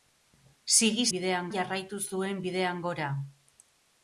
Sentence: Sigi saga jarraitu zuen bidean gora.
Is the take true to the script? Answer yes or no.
no